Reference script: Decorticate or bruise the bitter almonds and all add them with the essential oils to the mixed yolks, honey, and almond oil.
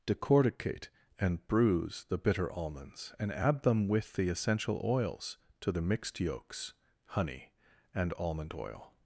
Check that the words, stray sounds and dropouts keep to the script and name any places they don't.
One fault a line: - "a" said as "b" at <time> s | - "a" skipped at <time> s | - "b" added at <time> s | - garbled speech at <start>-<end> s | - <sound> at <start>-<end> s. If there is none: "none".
- "or" said as "and" at 1.2 s
- "all" skipped at 3.3 s